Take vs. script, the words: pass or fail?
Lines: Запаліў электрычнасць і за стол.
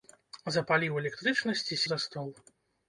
pass